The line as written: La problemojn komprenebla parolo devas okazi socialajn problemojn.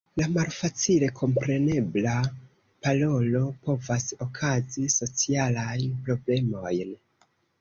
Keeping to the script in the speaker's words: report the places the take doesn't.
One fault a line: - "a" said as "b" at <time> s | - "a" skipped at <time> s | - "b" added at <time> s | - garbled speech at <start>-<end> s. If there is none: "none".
- "problemojn" said as "malfacile" at 0.3 s
- "devas" said as "povas" at 3.7 s